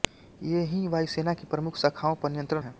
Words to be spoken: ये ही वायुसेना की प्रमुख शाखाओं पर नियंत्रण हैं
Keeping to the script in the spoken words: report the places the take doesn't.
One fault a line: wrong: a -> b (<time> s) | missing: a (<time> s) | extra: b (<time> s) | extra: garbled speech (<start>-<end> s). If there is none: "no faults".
no faults